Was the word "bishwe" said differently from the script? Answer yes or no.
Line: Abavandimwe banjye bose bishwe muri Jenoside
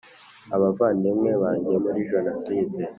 yes